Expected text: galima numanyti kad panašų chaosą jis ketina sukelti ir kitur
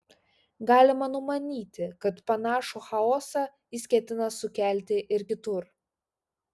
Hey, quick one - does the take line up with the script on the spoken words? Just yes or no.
yes